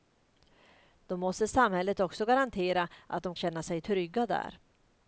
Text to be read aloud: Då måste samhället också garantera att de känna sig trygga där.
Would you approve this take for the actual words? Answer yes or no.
yes